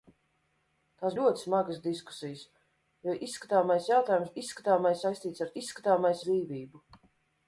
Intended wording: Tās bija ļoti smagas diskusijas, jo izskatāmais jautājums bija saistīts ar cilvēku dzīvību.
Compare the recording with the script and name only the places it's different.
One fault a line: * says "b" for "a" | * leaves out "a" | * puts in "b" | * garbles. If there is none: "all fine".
* leaves out "bija"
* says "izskatāmais" for "bija"
* says "izskatāmais" for "cilvēku"